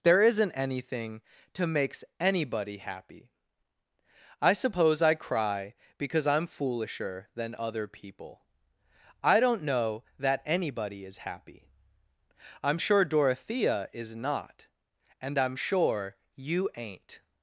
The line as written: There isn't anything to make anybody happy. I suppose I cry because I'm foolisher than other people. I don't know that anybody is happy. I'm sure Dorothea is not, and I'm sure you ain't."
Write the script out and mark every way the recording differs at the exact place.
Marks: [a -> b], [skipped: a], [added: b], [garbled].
There isn't anything to [make -> makes] anybody happy. I suppose I cry because I'm foolisher than other people. I don't know that anybody is happy. I'm sure Dorothea is not, and I'm sure you ain't."